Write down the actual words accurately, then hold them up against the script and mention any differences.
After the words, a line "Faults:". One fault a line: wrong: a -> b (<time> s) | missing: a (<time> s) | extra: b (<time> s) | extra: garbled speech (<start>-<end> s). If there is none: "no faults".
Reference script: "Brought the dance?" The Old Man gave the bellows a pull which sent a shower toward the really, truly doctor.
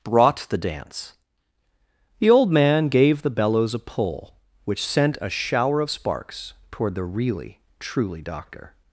"Brought the dance?" The Old Man gave the bellows a pull which sent a shower of sparks toward the really, truly doctor.
Faults:
extra: of sparks (5.8 s)